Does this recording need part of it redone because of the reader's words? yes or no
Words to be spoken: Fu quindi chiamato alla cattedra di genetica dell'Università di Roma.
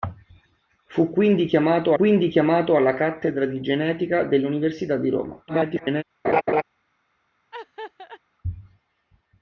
yes